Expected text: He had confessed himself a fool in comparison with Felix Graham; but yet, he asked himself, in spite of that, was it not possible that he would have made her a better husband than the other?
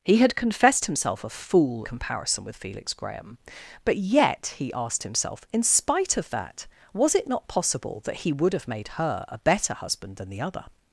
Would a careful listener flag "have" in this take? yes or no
no